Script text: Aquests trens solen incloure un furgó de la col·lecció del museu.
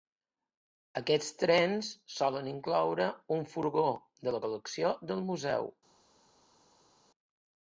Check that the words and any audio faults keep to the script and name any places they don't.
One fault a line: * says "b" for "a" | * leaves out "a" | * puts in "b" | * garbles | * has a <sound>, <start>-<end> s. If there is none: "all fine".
all fine